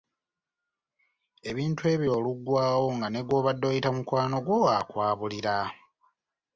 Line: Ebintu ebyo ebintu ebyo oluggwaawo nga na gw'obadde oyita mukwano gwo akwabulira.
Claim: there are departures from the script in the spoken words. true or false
true